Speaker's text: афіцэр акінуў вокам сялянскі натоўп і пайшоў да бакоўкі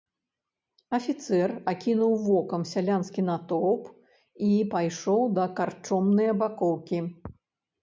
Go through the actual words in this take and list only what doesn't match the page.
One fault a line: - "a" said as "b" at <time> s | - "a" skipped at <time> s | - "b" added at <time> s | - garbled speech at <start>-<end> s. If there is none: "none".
- "карчомнае" added at 5.6 s